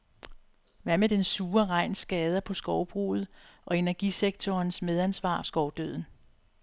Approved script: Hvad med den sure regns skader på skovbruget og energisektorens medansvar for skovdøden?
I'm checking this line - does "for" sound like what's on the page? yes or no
no